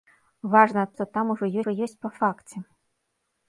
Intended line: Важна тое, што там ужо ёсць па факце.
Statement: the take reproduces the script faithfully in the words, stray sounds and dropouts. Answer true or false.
false